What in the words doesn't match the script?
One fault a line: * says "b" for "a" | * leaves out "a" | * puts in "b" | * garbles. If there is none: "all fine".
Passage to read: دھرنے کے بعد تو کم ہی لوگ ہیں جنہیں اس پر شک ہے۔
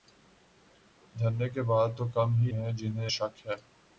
* leaves out "لوگ"
* leaves out "اس پر"